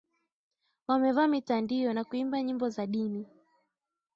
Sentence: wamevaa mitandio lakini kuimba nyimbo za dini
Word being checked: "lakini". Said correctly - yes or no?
no